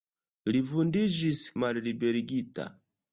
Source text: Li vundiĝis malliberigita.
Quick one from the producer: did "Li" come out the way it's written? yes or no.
yes